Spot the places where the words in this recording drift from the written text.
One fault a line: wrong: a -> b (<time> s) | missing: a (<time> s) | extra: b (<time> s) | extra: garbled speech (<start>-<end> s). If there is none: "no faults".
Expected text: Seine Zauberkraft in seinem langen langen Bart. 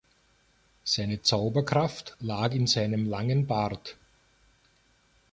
extra: lag (2.2 s)
missing: langen (3.5 s)